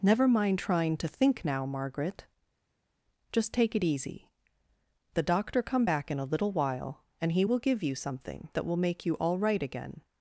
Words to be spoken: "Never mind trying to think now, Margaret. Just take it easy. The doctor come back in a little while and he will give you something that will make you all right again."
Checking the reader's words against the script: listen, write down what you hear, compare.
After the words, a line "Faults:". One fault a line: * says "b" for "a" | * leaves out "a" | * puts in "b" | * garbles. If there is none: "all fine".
"Never mind trying to think now, Margaret. Just take it easy. The doctor come back in a little while and he will give you something that will make you all right again."
Faults:
all fine